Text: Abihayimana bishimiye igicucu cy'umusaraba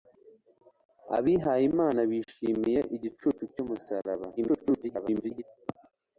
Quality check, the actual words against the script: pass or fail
fail